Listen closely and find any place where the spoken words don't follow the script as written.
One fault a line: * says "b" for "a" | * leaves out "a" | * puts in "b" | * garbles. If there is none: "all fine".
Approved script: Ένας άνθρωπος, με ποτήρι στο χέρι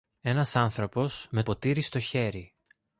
all fine